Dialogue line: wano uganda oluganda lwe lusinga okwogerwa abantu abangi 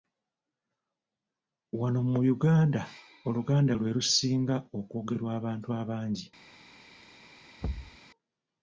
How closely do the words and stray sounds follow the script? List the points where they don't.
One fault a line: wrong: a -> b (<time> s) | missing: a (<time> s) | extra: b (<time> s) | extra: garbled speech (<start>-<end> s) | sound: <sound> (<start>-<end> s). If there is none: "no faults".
extra: mu (2.1 s)
sound: thud (7.6-8.0 s)